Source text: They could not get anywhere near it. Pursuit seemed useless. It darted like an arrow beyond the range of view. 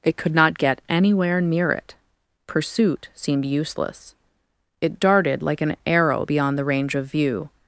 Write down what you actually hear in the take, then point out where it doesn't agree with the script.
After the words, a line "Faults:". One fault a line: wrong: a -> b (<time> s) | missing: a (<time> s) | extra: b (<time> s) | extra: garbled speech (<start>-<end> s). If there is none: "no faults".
It could not get anywhere near it. Pursuit seemed useless. It darted like an arrow beyond the range of view.
Faults:
wrong: They -> It (0.0 s)